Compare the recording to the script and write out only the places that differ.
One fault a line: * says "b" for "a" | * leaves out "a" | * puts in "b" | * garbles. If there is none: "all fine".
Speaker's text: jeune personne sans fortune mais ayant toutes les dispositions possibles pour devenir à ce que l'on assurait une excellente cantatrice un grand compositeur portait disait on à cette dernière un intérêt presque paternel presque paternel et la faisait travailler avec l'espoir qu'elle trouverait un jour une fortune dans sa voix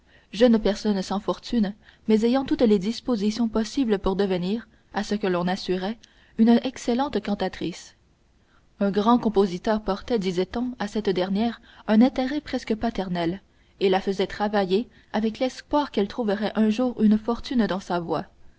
* leaves out "presque paternel"